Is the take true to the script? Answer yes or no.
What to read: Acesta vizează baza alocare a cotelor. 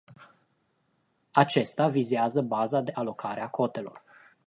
no